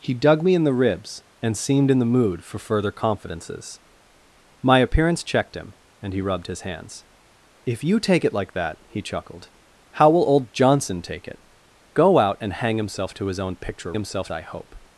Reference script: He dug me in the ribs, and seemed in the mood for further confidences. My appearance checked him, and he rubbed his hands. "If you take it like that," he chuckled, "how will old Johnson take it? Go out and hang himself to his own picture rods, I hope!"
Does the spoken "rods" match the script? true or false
false